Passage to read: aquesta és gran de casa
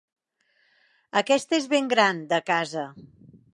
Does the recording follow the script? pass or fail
fail